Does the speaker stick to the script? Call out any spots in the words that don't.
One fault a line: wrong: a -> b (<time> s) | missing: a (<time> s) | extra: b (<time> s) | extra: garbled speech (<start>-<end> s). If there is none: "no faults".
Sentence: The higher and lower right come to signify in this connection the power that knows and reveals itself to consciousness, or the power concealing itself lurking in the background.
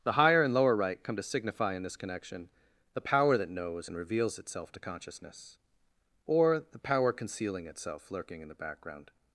no faults